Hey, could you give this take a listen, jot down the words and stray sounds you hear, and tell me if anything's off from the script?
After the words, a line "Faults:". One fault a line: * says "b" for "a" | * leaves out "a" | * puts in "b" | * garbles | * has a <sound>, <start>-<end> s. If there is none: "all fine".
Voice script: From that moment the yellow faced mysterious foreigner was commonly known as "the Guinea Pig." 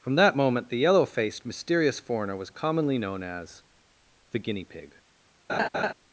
From that moment the yellow faced mysterious foreigner was commonly known as "the Guinea Pig."
Faults:
* has a laugh, 5.5-5.9 s